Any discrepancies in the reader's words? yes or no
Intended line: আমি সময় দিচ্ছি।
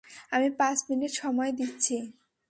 yes